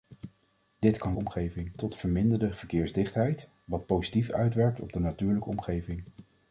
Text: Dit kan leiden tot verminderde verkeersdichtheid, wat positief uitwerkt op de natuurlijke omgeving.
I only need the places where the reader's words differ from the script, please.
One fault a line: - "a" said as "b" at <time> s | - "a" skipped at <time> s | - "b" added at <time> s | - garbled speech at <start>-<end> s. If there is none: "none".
- "leiden" said as "omgeving" at 1.2 s